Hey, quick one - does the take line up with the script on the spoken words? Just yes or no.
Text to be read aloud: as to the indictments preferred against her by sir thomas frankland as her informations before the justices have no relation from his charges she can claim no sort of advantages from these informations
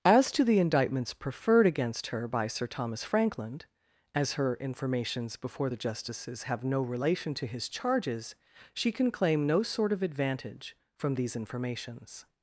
no